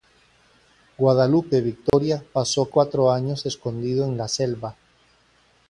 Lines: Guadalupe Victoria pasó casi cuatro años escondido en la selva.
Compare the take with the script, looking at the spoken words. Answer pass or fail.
fail